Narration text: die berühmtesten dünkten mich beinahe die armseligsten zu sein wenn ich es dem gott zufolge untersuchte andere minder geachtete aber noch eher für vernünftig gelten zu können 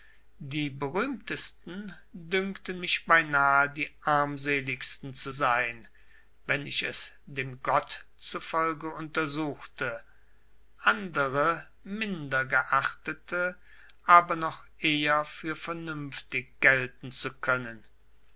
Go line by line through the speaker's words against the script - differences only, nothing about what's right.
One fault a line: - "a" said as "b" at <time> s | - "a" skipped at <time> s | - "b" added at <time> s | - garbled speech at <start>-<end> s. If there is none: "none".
none